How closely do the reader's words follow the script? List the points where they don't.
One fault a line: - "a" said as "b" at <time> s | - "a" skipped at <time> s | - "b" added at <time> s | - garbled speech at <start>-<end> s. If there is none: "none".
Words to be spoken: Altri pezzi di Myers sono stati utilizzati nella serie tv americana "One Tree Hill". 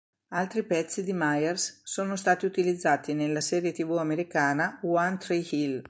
none